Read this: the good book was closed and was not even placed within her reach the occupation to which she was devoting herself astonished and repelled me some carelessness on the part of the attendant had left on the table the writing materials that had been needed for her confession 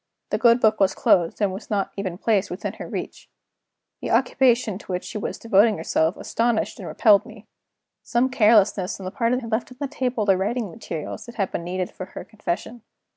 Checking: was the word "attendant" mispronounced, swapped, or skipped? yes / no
yes